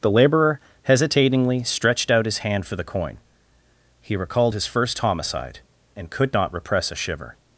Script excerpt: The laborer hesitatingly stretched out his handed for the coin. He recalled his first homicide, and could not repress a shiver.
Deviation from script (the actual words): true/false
true